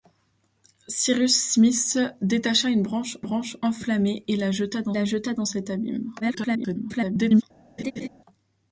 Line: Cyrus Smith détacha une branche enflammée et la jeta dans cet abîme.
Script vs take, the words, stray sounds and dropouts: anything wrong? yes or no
yes